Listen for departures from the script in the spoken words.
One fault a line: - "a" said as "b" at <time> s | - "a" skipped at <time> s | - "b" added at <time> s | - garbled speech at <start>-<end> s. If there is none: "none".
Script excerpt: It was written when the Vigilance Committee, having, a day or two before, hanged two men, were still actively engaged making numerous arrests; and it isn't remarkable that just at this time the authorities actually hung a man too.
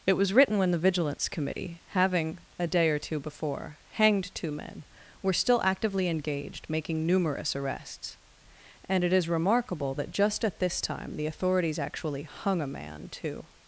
- "isn't" said as "is" at 9.1 s